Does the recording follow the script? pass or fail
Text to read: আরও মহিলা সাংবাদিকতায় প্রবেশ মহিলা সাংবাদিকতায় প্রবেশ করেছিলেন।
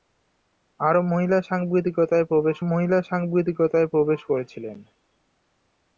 pass